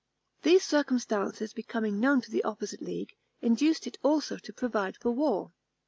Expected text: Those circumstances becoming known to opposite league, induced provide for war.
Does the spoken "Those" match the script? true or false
false